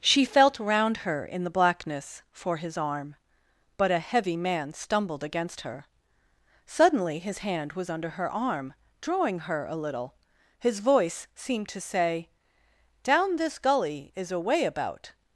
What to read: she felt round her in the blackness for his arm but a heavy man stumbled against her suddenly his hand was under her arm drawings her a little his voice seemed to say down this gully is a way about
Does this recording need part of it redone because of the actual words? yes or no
yes